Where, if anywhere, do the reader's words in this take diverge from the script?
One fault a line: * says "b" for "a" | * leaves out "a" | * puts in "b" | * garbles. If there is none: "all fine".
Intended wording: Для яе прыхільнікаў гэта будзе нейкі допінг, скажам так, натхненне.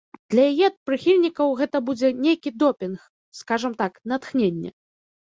all fine